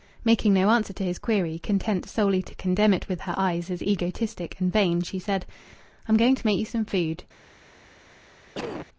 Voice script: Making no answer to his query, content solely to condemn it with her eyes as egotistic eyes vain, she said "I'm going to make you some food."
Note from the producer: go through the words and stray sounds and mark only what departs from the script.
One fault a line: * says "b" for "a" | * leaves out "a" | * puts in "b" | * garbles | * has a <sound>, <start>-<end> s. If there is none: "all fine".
* says "and" for "eyes"
* has a cough, 8.5-8.9 s